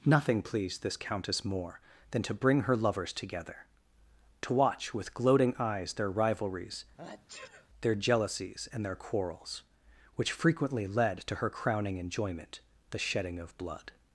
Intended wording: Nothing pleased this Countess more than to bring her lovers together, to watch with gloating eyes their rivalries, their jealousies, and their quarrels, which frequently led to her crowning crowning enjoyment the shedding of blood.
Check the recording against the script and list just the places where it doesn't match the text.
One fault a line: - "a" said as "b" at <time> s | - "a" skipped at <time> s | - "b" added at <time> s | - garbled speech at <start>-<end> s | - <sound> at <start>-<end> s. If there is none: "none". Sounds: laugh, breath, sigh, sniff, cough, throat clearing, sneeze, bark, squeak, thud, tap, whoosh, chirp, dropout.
- sneeze at 7.0-7.7 s
- "crowning" skipped at 12.0 s